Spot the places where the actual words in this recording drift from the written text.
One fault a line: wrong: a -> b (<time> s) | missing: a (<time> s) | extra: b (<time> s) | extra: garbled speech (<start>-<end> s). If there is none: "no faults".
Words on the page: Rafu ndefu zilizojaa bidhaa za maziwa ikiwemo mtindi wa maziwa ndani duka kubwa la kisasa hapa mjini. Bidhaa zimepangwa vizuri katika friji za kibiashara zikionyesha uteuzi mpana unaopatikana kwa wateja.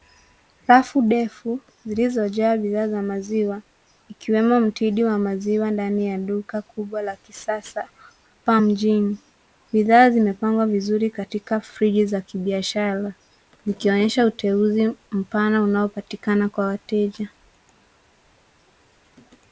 extra: ya (6.1 s)